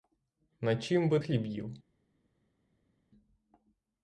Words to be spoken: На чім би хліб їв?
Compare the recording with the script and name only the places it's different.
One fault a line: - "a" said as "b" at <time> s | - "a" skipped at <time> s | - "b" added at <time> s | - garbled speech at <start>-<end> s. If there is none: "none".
none